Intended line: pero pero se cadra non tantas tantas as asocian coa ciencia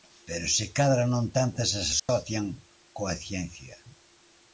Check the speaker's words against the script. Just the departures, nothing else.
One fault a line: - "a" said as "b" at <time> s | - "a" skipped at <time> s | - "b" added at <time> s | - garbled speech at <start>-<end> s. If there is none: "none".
- "pero" skipped at 0.5 s
- "tantas" skipped at 1.7 s